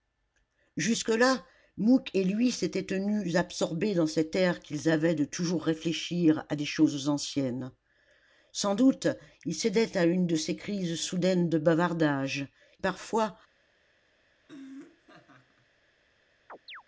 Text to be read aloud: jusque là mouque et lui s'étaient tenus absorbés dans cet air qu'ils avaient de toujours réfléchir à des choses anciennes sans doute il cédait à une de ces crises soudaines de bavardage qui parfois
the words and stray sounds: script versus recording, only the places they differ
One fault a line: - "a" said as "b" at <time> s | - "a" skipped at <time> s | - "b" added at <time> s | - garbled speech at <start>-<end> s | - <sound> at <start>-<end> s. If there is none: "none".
- "qui" skipped at 12.5 s
- laugh at 14.4-15.7 s
- chirp at 16.5-16.8 s